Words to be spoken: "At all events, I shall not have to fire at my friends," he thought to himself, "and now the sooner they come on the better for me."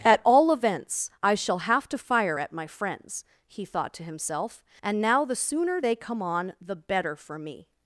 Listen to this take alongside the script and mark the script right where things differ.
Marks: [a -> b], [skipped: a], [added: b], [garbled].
"At all events, I shall [skipped: not] have to fire at my friends," he thought to himself, "and now the sooner they come on the better for me."